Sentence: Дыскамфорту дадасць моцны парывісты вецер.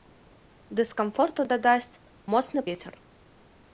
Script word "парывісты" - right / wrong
wrong